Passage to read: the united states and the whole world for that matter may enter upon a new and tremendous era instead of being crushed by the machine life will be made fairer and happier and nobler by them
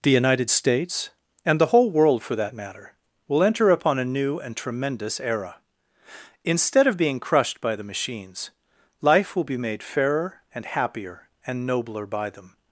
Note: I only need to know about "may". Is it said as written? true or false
false